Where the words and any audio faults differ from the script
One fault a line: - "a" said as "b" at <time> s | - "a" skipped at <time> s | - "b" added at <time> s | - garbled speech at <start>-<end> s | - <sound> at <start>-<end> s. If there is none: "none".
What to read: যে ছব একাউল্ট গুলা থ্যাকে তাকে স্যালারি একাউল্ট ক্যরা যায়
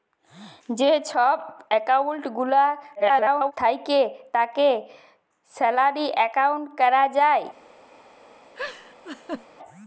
- garbled speech at 3.0-3.5 s
- laugh at 8.6-9.5 s